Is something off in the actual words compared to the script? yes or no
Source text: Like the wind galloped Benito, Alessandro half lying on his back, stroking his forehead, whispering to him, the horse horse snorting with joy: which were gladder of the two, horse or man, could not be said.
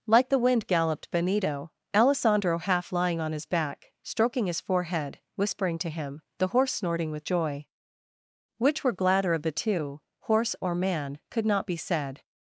yes